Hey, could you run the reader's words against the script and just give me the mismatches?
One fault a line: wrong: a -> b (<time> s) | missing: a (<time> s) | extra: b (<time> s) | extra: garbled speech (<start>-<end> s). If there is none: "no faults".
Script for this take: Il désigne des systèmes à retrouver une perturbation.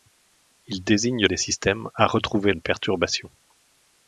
no faults